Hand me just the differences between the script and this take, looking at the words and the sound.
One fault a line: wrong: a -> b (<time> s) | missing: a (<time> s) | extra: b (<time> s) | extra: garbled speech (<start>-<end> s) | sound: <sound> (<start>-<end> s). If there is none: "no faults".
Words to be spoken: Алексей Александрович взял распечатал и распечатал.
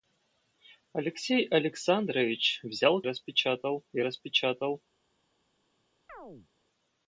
sound: chirp (6.1-6.5 s)